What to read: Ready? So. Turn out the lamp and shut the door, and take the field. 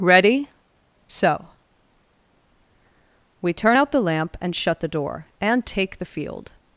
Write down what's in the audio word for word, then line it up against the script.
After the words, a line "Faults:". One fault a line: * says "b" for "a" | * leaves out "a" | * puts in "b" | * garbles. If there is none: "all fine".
Ready? So. We turn out the lamp and shut the door, and take the field.
Faults:
* puts in "We"